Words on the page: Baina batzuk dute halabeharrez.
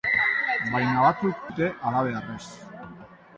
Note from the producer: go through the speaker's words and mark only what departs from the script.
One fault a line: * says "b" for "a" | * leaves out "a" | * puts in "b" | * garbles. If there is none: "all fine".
all fine